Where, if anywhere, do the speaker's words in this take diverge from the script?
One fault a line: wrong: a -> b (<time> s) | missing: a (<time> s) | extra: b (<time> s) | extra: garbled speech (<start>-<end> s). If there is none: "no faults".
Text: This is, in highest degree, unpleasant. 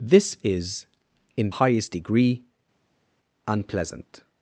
no faults